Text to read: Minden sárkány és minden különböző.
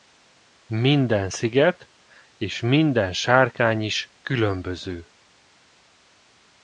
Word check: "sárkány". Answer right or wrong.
wrong